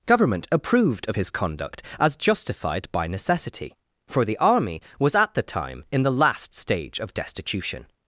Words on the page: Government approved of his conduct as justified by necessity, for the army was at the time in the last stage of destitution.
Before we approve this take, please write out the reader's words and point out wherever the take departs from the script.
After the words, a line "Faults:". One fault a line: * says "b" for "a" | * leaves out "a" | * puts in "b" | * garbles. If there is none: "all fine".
Government approved of his conduct as justified by necessity, for the army was at the time in the last stage of destitution.
Faults:
all fine